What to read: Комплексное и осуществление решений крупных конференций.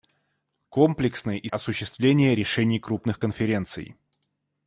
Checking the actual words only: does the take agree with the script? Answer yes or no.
yes